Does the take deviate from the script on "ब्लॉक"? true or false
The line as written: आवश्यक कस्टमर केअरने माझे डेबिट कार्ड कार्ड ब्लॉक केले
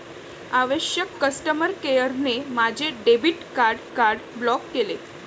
false